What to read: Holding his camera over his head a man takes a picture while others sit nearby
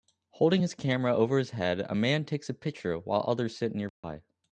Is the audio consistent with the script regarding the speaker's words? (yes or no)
yes